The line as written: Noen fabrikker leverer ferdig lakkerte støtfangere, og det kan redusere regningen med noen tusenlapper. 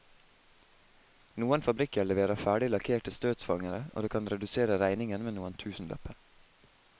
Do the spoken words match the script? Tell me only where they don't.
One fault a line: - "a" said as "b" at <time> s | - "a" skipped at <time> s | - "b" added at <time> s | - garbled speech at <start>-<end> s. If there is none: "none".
none